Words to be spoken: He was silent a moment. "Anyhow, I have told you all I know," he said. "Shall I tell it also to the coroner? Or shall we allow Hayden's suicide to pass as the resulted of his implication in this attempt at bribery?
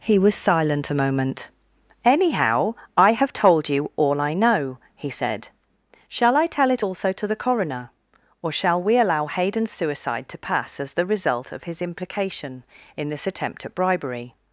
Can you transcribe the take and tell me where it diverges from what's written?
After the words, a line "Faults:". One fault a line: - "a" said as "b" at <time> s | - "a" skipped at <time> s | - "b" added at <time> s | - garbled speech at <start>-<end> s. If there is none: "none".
He was silent a moment. "Anyhow, I have told you all I know," he said. "Shall I tell it also to the coroner? Or shall we allow Hayden's suicide to pass as the result of his implication in this attempt at bribery?
Faults:
- "resulted" said as "result" at 11.1 s